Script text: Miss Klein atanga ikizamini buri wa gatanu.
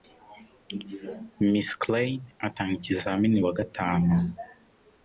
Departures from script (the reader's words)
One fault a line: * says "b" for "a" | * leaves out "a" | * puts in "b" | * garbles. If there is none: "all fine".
* leaves out "buri"